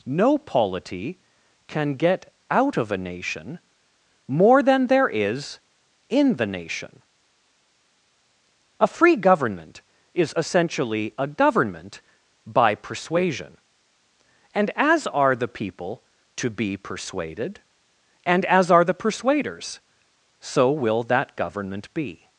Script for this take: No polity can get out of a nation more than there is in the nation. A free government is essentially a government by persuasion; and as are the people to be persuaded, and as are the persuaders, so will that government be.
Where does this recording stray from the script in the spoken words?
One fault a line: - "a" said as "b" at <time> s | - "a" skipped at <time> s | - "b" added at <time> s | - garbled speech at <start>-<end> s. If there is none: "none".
none